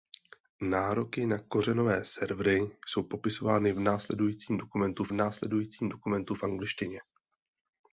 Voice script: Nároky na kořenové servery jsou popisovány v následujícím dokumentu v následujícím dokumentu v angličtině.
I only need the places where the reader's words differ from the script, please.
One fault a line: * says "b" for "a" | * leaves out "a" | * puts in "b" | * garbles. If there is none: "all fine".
all fine